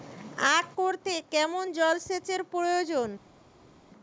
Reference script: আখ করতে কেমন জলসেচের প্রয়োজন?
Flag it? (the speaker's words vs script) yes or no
no